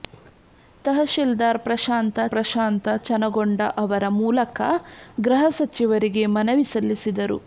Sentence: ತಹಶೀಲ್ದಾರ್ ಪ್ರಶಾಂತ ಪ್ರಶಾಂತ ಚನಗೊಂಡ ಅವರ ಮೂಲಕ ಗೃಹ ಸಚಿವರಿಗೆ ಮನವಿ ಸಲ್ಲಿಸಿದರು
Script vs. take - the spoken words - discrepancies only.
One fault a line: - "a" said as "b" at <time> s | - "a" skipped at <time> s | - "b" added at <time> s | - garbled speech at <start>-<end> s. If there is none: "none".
none